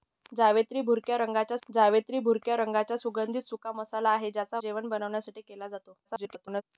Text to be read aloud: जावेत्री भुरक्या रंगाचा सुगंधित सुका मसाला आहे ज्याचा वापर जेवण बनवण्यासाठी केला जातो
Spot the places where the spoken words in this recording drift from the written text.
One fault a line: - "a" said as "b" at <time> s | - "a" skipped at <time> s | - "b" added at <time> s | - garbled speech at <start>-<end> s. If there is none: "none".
- "जावेत्री भुरक्या रंगाचा" added at 1.7 s
- "वापर" skipped at 4.6 s
- garbled speech at 6.0-6.6 s